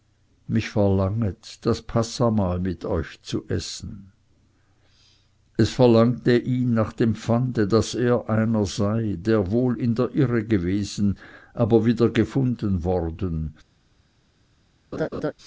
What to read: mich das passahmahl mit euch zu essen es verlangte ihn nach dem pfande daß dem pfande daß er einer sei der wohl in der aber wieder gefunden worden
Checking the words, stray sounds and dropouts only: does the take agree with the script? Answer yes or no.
no